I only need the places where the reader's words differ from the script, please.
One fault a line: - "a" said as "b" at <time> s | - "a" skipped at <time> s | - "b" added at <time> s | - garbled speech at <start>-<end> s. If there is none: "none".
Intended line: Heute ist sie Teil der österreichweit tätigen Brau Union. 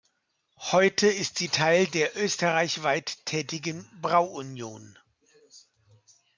none